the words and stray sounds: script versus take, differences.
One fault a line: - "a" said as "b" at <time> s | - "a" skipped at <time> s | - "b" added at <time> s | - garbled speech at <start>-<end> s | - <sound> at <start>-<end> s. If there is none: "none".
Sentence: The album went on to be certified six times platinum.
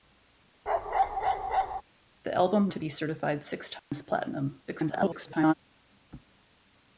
- bark at 0.7-1.8 s
- "went on" skipped at 2.7 s
- dropout at 3.8-3.9 s
- garbled speech at 4.7-5.5 s